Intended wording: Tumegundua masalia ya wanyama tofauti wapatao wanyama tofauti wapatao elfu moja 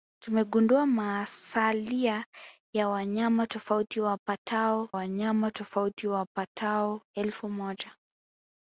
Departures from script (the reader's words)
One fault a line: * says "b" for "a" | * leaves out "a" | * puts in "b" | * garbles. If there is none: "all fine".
all fine